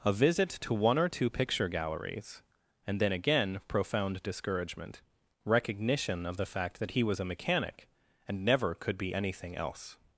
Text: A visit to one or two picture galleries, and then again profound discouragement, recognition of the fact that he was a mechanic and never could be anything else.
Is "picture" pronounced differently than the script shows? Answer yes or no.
no